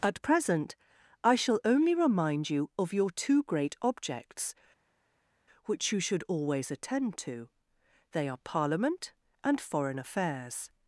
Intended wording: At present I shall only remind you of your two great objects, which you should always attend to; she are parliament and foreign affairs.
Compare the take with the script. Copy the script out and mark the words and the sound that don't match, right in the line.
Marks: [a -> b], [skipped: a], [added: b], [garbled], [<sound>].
At present I shall only remind you of your two great objects, which you should always attend to; [she -> they] are parliament and foreign affairs.